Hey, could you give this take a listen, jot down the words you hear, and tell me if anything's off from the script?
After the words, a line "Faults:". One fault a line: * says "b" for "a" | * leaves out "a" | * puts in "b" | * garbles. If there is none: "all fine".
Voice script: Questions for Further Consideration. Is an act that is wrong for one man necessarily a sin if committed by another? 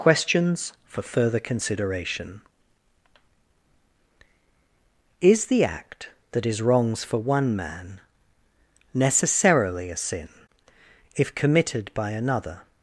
Questions for Further Consideration. Is the act that is wrongs for one man necessarily a sin if committed by another?
Faults:
* says "the" for "an"
* says "wrongs" for "wrong"